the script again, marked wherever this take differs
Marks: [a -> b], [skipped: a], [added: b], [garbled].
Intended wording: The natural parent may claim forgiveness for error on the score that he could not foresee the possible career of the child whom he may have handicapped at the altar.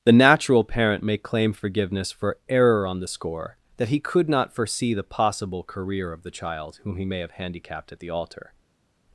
The natural parent may claim forgiveness for error on the score that he could not foresee the possible career of the child whom he may have handicapped at the altar.